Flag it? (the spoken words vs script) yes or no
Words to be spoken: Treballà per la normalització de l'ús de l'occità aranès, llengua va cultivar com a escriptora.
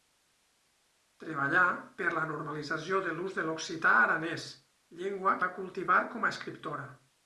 no